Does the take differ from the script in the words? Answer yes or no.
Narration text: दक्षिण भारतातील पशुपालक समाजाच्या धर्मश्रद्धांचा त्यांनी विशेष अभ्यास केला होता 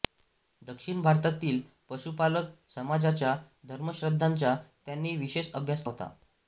yes